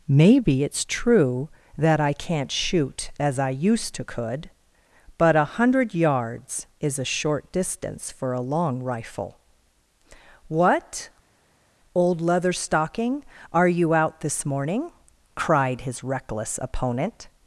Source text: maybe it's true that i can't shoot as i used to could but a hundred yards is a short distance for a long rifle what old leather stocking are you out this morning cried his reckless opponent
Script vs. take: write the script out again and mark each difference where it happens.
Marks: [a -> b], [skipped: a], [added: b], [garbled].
maybe it's true that i can't shoot as i used to could but a hundred yards is a short distance for a long rifle what old leather stocking are you out this morning cried his reckless opponent